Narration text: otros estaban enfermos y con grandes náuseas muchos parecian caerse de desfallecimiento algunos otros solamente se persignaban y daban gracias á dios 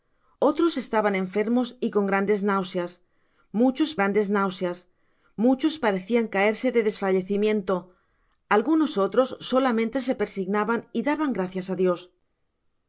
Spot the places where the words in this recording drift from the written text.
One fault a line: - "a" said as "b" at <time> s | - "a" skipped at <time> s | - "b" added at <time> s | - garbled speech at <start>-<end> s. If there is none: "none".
- "grandes náuseas muchos" added at 4.0 s